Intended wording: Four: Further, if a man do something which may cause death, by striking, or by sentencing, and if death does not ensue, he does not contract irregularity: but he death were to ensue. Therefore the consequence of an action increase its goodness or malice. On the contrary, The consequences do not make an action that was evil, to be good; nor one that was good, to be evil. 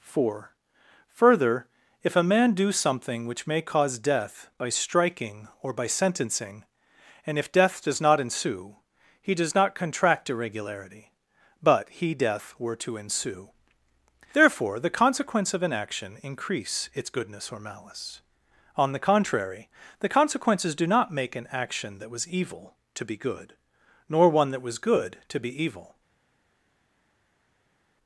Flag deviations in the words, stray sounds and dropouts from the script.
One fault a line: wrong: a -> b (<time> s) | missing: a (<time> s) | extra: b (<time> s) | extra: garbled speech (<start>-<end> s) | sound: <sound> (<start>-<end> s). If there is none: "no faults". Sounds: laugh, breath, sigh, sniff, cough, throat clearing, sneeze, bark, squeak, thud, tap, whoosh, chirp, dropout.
no faults